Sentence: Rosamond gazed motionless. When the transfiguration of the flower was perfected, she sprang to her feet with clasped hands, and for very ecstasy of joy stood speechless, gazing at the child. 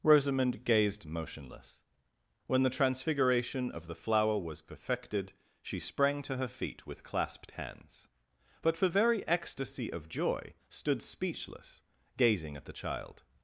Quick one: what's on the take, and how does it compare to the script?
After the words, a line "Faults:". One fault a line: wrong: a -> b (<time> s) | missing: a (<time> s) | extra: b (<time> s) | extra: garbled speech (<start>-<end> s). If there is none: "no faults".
Rosamond gazed motionless. When the transfiguration of the flower was perfected, she sprang to her feet with clasped hands, but for very ecstasy of joy stood speechless, gazing at the child.
Faults:
wrong: and -> but (8.6 s)